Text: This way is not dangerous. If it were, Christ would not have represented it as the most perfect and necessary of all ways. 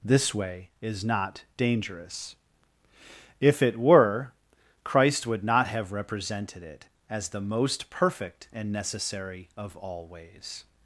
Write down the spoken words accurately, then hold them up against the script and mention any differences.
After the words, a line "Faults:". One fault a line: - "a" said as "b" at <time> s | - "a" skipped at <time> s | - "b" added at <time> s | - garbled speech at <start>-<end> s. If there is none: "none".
This way is not dangerous. If it were, Christ would not have represented it as the most perfect and necessary of all ways.
Faults:
none